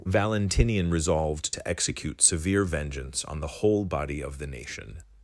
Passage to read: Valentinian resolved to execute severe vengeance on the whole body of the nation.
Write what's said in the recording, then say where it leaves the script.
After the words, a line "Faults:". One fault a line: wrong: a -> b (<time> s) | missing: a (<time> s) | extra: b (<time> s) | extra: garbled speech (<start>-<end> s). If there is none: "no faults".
Valentinian resolved to execute severe vengeance on the whole body of the nation.
Faults:
no faults